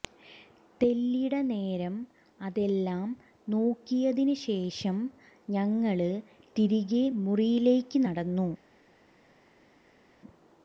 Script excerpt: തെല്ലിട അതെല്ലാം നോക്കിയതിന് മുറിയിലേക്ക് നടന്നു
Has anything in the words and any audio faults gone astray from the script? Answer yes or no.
yes